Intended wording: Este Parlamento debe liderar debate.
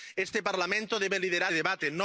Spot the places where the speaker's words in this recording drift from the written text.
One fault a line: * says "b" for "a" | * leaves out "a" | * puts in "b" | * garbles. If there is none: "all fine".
all fine